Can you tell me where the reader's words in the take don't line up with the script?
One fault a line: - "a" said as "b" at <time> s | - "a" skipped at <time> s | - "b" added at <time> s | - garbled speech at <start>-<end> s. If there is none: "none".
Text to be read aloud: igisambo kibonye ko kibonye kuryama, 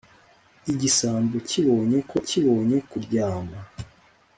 none